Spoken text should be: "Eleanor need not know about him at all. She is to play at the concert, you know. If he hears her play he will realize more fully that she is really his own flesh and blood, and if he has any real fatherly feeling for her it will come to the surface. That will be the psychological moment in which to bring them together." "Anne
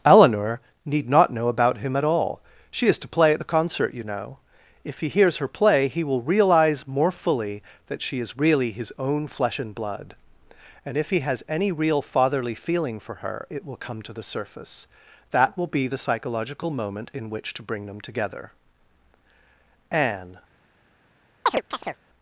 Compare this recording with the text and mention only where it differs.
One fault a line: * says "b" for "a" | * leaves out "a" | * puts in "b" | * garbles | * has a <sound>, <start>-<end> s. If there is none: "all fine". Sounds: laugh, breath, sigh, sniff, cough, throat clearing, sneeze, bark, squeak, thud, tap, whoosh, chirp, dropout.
* has a chirp, 21.5-22.0 s